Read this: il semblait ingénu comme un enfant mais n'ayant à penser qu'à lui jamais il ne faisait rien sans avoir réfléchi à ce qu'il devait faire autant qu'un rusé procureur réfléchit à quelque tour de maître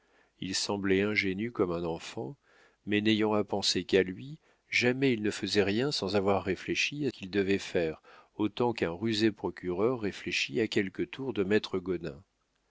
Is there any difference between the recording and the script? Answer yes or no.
yes